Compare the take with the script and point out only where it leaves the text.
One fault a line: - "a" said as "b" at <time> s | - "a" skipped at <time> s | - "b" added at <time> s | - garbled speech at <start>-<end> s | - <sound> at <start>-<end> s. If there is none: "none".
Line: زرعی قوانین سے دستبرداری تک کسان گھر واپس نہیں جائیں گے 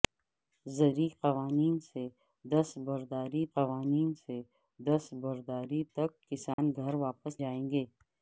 - "قوانین سے دستبرداری" added at 3.5 s
- dropout at 6.5-6.6 s
- "نہیں" skipped at 7.4 s